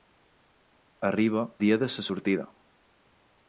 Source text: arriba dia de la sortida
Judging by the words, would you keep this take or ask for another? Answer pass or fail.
pass